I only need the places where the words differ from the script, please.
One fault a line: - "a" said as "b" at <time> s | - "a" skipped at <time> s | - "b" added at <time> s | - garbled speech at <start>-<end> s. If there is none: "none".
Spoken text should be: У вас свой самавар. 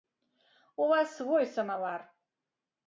none